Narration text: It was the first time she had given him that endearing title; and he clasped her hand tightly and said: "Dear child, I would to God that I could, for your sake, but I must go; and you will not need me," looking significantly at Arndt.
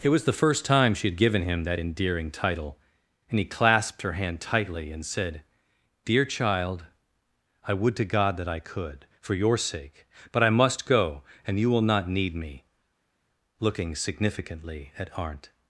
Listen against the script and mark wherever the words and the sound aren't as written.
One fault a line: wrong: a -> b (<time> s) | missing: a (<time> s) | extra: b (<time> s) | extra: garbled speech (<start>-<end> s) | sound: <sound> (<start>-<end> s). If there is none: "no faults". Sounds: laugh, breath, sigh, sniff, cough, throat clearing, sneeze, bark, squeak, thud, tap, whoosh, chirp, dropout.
no faults